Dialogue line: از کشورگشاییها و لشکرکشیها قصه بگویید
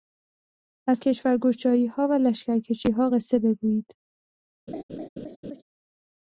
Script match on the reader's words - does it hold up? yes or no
yes